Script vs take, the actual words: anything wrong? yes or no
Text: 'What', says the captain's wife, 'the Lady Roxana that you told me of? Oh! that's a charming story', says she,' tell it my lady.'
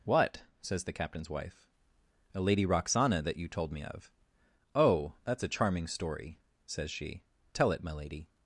yes